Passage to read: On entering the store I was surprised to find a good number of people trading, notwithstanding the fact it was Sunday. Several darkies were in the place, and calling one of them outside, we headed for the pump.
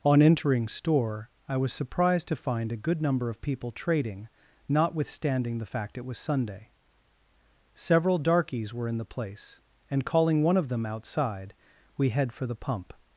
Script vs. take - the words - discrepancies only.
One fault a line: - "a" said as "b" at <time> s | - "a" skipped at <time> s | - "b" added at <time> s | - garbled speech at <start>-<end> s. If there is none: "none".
- "the" skipped at 0.7 s
- "headed" said as "head" at 12.1 s